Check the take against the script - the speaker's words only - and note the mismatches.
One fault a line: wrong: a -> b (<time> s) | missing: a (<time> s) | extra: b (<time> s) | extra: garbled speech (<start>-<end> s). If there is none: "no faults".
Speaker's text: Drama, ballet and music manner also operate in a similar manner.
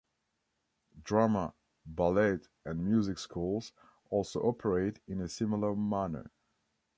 wrong: manner -> schools (3.2 s)